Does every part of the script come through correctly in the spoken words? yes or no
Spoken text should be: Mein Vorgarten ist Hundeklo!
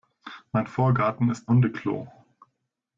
yes